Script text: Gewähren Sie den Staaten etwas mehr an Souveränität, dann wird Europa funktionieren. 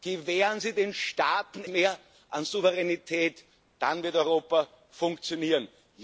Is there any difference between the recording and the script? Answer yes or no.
yes